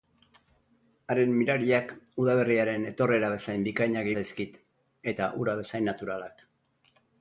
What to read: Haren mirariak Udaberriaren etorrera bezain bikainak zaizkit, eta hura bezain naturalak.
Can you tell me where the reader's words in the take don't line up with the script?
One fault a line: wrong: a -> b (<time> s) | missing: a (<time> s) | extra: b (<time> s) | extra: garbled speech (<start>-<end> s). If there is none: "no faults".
no faults